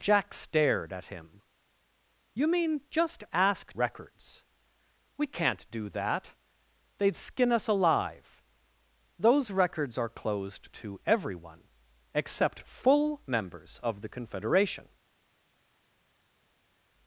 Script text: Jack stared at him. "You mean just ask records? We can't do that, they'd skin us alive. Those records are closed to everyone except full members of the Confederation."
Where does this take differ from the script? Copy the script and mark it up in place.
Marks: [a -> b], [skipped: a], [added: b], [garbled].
Jack stared at him. "You mean just ask records? We can't do that, they'd skin us alive. Those records are closed to everyone except full members of the Confederation."